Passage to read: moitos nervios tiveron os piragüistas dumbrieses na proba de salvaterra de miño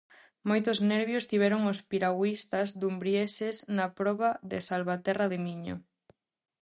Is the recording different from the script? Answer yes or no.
no